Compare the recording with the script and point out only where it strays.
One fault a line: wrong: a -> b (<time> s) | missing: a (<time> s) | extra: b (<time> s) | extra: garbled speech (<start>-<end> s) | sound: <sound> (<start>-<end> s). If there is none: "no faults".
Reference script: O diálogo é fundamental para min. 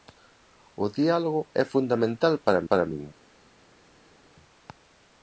extra: para (2.7 s)